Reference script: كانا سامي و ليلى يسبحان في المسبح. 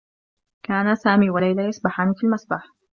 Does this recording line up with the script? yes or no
yes